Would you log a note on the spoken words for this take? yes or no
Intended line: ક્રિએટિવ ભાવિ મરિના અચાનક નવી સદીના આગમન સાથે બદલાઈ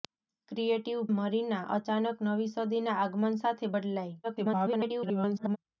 yes